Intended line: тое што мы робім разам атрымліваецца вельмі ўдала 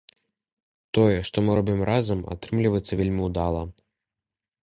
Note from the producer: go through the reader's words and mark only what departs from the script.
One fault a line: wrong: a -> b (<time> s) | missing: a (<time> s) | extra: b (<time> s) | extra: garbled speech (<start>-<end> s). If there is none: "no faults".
no faults